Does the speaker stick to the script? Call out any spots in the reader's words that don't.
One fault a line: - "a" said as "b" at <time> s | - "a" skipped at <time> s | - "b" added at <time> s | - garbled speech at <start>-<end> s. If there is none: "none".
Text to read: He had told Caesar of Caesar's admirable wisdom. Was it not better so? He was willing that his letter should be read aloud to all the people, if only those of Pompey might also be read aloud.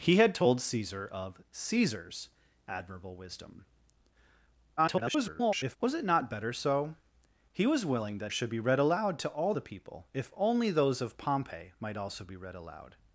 - garbled speech at 4.8-5.8 s
- "his letter" skipped at 8.3 s